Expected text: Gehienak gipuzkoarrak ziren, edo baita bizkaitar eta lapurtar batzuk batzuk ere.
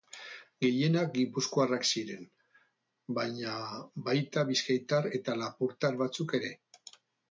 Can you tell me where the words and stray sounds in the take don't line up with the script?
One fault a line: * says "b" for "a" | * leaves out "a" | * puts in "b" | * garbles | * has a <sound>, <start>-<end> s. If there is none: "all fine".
* says "baina" for "edo"
* leaves out "batzuk"